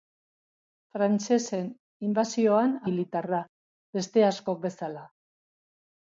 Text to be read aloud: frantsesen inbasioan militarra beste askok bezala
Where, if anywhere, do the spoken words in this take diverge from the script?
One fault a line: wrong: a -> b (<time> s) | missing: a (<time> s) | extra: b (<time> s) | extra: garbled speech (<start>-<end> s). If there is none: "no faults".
no faults